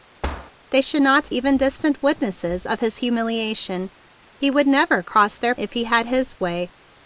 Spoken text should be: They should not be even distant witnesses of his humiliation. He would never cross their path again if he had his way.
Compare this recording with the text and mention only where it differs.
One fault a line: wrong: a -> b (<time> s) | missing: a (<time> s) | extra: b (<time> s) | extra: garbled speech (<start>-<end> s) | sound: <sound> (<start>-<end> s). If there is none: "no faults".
sound: thud (0.2-0.5 s)
missing: be (1.3 s)
missing: path again (5.6 s)